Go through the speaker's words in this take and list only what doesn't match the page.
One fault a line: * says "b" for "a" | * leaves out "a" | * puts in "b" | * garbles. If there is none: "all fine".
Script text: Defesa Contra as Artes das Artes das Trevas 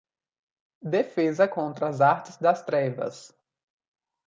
* leaves out "Artes das"